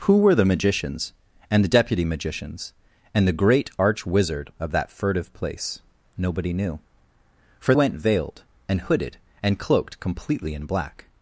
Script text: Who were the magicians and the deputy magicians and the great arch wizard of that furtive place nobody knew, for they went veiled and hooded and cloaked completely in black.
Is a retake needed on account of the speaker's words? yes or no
yes